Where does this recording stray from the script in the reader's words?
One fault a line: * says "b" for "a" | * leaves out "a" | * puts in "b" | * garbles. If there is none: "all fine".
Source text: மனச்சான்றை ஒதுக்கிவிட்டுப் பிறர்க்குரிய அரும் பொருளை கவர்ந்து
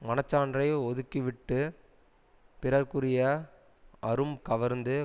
* leaves out "பொருளை"